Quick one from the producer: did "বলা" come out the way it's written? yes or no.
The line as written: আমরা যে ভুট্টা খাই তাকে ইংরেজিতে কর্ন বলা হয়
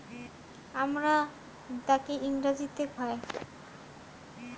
no